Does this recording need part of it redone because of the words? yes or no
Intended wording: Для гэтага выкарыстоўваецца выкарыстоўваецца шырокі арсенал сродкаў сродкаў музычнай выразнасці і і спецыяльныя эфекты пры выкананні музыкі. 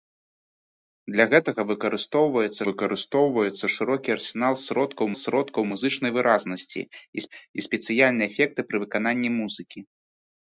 no